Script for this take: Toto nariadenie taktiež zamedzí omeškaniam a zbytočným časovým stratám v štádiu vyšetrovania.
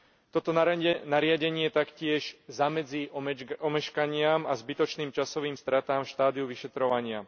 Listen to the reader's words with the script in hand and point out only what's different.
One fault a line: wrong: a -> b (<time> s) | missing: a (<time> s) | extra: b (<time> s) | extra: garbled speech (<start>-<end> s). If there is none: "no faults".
no faults